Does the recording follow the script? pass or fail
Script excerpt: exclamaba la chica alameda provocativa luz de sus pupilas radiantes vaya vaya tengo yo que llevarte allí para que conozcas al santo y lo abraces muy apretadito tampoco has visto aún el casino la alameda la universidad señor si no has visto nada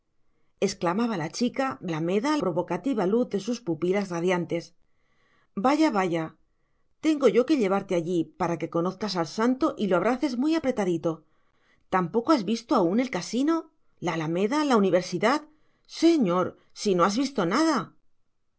pass